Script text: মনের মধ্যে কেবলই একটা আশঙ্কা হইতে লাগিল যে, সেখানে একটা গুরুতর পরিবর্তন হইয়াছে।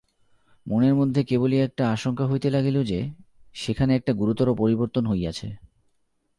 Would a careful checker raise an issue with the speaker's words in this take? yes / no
no